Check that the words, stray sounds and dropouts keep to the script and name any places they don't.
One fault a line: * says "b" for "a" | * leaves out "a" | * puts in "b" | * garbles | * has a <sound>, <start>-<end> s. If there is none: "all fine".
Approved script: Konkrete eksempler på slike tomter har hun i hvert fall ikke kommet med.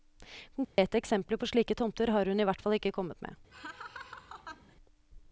* has a dropout, 0.6-0.8 s
* has a laugh, 3.5-4.8 s